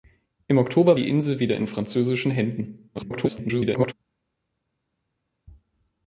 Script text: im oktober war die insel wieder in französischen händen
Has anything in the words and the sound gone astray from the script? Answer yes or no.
yes